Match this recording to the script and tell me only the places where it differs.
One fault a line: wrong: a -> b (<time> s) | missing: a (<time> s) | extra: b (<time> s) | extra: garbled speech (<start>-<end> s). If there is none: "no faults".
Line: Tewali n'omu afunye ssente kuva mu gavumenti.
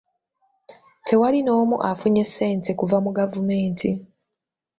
no faults